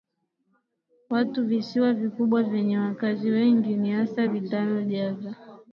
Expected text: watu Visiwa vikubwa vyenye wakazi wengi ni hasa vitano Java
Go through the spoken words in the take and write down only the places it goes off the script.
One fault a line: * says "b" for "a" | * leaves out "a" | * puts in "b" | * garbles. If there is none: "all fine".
all fine